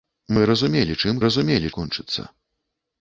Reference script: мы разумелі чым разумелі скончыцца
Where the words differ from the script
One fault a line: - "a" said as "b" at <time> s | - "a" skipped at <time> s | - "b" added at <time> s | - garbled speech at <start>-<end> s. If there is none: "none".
none